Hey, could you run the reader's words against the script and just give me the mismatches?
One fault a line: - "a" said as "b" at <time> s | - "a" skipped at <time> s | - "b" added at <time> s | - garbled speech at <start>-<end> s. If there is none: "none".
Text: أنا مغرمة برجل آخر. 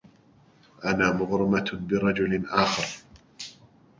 none